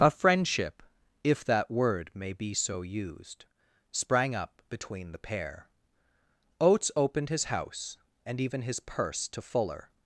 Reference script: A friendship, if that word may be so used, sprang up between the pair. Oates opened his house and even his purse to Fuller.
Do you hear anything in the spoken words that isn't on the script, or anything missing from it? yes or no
no